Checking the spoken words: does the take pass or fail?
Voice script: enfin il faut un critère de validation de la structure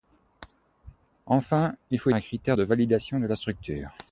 pass